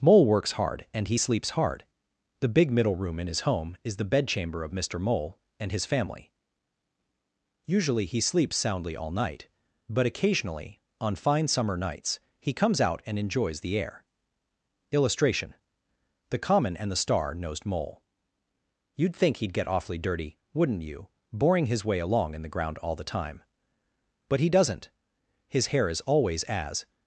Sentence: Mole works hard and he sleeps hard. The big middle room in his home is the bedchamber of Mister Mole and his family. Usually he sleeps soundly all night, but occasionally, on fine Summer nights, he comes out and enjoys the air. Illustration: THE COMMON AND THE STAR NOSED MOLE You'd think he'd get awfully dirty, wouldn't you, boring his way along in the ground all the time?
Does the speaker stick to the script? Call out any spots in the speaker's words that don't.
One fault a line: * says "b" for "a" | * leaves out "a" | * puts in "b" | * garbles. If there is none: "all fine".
* puts in "But he doesn't His hair is always as"